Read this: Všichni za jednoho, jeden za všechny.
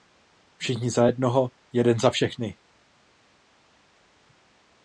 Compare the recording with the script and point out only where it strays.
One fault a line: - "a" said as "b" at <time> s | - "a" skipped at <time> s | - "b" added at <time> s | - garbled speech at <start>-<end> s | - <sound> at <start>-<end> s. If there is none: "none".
none